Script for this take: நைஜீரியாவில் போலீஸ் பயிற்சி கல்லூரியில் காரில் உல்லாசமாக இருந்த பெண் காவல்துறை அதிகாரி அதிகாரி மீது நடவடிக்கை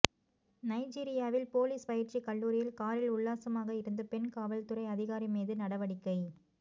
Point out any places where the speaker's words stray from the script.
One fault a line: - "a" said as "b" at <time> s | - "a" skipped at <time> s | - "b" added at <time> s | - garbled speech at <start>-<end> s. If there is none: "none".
- "அதிகாரி" skipped at 5.3 s